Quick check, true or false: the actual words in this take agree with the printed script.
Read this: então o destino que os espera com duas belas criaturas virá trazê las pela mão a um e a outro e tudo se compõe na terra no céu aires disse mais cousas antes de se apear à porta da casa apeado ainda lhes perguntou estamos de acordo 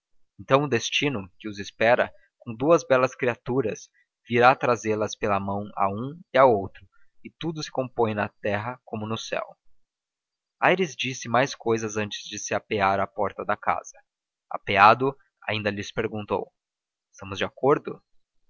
false